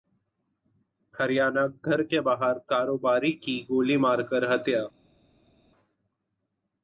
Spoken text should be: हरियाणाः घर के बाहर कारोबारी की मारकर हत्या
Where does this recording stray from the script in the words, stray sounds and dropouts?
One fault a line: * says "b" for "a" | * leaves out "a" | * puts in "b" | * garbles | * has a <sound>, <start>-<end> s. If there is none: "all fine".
* puts in "गोली"